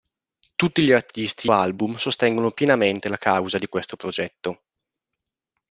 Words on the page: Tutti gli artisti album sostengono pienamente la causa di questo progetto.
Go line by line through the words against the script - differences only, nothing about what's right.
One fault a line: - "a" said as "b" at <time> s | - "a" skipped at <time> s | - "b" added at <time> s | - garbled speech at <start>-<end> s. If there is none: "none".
none